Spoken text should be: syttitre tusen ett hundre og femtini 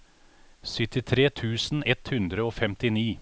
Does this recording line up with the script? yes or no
yes